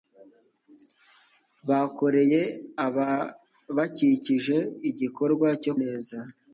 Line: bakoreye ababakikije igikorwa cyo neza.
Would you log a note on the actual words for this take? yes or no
no